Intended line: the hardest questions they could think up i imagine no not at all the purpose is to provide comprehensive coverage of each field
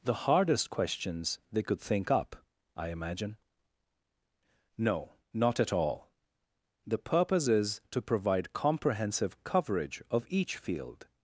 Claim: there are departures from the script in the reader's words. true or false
false